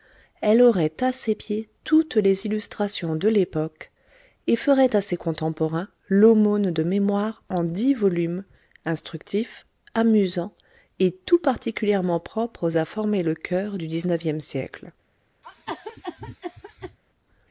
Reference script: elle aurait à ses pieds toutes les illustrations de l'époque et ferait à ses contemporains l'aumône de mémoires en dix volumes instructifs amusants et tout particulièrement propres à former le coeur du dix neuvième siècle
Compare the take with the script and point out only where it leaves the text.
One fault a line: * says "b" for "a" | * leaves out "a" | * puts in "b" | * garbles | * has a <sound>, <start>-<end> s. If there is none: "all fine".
* has a cough, 15.4-17.0 s